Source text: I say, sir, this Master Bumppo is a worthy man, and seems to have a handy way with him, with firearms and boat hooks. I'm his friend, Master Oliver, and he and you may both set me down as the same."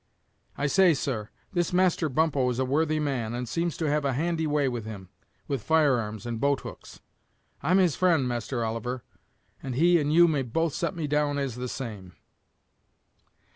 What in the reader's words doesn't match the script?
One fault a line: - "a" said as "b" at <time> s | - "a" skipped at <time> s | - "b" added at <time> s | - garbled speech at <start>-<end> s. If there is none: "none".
none